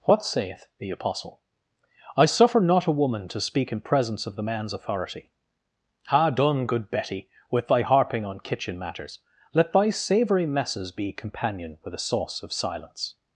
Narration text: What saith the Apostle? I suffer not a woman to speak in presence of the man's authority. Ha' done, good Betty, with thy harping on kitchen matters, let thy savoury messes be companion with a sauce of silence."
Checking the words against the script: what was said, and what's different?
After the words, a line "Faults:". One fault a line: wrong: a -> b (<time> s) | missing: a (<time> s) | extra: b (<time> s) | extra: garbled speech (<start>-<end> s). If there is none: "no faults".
What saith the Apostle? I suffer not a woman to speak in presence of the man's authority. Ha' done, good Betty, with thy harping on kitchen matters, let thy savoury messes be companion with a sauce of silence."
Faults:
no faults